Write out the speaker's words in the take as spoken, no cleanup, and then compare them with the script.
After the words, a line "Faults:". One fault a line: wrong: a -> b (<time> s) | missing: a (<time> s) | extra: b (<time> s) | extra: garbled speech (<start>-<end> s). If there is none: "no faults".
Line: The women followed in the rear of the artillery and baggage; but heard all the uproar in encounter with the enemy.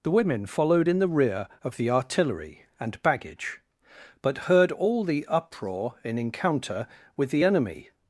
The women followed in the rear of the artillery and baggage; but heard all the uproar in encounter with the enemy.
Faults:
no faults